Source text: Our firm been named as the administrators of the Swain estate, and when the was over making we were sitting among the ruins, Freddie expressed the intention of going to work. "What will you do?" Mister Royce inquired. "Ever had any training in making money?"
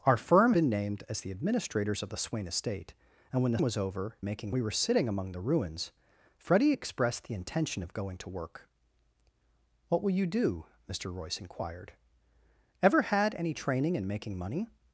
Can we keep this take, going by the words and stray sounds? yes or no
yes